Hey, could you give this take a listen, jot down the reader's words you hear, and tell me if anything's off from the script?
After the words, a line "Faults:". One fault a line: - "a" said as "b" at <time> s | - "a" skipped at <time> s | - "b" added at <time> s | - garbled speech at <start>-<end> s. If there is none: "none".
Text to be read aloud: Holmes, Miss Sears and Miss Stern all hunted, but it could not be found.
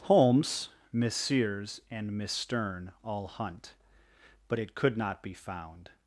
Holmes, Miss Sears and Miss Stern all hunt, but it could not be found.
Faults:
- "hunted" said as "hunt" at 3.3 s